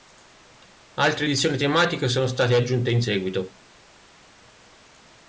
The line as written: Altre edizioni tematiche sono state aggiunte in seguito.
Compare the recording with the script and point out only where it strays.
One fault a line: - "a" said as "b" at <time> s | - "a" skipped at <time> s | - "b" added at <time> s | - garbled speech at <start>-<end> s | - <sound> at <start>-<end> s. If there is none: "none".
none